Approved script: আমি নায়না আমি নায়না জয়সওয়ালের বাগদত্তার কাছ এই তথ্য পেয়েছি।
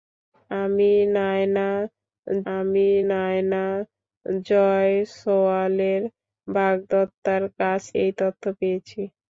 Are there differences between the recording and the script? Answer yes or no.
no